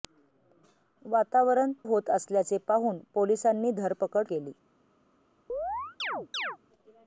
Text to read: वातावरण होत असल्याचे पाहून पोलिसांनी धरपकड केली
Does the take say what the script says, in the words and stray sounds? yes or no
no